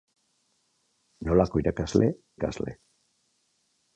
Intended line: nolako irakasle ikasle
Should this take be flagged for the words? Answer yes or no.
no